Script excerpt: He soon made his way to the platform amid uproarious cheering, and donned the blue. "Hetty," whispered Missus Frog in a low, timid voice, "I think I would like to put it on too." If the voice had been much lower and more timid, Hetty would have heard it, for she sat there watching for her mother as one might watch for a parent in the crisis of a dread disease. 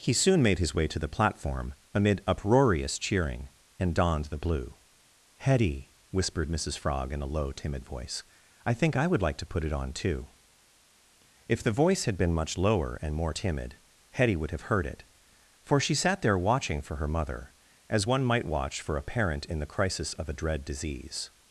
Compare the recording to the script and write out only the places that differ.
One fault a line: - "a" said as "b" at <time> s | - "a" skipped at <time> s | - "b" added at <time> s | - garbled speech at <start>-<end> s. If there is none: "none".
none